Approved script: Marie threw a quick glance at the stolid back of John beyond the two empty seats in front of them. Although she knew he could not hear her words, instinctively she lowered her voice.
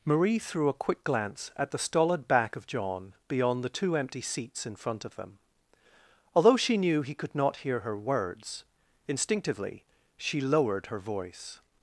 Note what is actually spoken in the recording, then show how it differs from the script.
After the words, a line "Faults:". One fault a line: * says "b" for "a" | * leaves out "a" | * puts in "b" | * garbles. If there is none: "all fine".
Marie threw a quick glance at the stolid back of John beyond the two empty seats in front of them. Although she knew he could not hear her words, instinctively she lowered her voice.
Faults:
all fine